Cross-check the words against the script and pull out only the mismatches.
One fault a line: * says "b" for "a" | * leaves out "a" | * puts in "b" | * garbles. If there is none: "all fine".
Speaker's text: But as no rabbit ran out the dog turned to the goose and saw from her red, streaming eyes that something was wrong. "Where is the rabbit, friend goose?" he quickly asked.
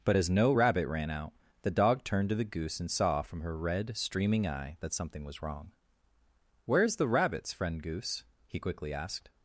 * says "eye" for "eyes"
* says "rabbits" for "rabbit"